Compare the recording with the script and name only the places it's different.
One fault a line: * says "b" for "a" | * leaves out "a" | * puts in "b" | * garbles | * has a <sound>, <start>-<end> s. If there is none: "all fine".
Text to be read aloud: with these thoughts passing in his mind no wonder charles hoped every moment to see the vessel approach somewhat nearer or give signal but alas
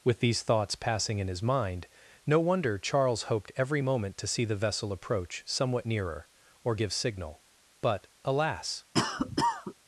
* has a cough, 8.9-9.7 s